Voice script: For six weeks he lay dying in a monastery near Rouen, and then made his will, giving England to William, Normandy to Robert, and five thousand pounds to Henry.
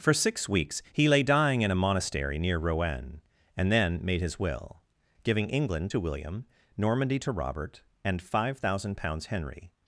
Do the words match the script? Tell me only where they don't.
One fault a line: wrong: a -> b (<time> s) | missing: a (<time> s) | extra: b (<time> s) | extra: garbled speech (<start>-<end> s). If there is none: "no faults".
missing: to (9.3 s)